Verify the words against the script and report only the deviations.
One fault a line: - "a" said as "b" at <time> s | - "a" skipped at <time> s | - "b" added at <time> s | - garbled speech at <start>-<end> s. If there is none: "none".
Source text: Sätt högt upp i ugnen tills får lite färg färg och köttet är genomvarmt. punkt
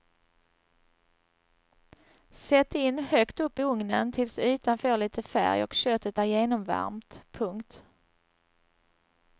- "in" added at 2.8 s
- "ytan" added at 4.4 s
- "färg" skipped at 5.6 s